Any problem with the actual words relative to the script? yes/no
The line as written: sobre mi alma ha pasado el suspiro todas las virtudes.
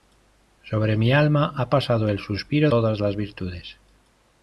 no